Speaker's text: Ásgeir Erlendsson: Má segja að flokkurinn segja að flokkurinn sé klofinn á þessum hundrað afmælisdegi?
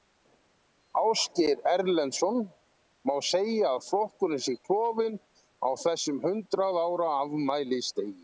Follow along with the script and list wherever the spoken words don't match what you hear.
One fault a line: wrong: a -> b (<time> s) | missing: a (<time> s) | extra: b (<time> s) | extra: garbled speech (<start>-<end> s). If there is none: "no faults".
missing: segja að flokkurinn (4.4 s)
extra: ára (6.8 s)